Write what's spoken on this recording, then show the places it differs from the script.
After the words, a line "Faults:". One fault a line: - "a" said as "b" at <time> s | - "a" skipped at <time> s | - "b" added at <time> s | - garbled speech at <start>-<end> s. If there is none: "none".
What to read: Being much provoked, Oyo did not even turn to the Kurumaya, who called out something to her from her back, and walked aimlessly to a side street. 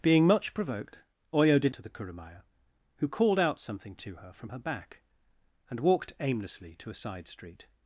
Being much provoked, Oyo did to the Kurumaya, who called out something to her from her back, and walked aimlessly to a side street.
Faults:
- "not even turn" skipped at 1.8 s